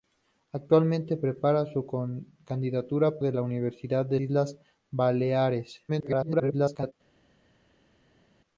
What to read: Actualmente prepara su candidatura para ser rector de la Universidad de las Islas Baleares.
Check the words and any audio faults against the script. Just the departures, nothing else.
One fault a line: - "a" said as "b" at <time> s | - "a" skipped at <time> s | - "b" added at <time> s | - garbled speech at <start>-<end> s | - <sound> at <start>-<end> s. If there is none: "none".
- "para ser rector" skipped at 3.2 s
- "las" skipped at 4.2 s
- garbled speech at 5.9-6.9 s